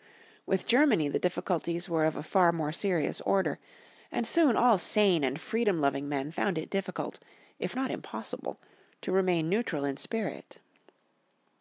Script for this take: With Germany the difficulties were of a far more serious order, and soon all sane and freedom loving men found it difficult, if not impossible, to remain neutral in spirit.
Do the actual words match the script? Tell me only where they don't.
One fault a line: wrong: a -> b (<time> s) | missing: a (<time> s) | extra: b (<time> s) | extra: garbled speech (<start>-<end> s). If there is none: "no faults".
no faults